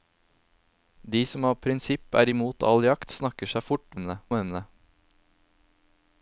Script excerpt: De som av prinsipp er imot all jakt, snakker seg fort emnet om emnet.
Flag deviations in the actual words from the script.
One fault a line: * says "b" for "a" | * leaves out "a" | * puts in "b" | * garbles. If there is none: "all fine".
all fine